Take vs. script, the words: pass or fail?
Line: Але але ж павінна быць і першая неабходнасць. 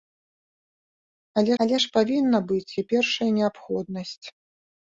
pass